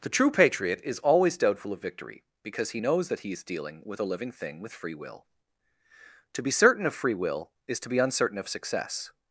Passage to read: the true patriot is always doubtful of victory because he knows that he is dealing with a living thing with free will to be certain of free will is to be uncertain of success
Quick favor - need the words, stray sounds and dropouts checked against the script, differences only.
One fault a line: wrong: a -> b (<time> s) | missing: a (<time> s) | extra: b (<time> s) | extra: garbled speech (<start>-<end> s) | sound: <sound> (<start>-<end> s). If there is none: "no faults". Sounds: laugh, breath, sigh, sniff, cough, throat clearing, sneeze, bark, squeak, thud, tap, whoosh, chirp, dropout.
no faults